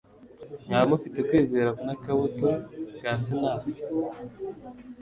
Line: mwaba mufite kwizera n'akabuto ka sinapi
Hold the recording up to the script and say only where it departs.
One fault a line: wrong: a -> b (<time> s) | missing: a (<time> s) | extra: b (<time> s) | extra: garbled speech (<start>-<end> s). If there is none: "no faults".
no faults